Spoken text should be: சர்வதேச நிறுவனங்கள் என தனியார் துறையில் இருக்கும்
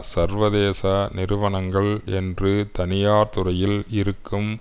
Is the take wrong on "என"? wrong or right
wrong